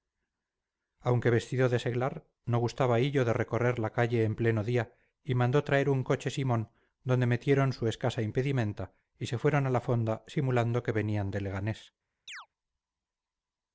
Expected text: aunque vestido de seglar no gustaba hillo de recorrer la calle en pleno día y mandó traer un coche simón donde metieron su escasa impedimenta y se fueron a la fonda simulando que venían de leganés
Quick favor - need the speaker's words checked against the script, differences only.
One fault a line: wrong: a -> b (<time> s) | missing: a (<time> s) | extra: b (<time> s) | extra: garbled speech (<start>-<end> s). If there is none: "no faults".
no faults